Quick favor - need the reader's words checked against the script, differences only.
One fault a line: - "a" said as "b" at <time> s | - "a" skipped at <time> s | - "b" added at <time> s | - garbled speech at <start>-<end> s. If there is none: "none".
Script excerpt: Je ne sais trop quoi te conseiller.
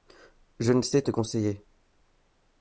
- "trop quoi" skipped at 1.0 s